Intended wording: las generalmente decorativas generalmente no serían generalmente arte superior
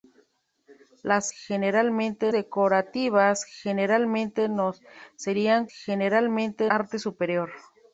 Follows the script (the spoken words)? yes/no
yes